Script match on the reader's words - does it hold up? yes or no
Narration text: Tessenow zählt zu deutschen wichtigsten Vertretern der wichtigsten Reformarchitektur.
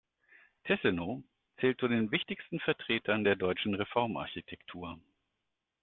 no